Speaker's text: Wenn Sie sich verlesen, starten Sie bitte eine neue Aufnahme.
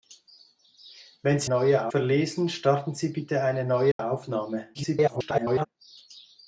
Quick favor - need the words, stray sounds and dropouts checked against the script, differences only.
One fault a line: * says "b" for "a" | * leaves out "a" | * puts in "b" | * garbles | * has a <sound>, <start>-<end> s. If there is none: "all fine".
* says "neue" for "sich"
* has a dropout, 3.9-4.0 s
* garbles